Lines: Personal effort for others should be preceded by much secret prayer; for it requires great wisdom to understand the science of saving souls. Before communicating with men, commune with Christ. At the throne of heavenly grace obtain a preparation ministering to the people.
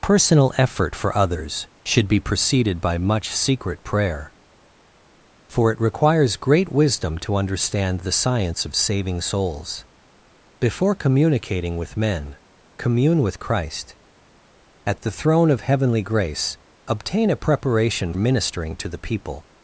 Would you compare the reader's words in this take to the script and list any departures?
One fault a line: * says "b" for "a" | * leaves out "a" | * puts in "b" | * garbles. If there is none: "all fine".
all fine